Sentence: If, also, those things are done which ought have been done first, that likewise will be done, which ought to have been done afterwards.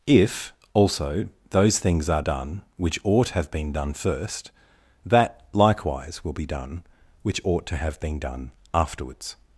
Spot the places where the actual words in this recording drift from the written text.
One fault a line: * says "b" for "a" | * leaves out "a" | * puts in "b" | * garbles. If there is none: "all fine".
all fine